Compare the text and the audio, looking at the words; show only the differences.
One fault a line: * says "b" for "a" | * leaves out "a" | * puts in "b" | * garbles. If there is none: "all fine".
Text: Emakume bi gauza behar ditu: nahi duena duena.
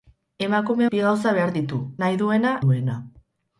all fine